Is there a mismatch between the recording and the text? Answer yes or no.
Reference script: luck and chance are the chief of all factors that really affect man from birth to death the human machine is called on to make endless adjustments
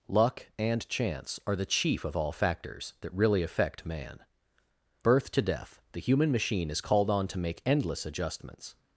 yes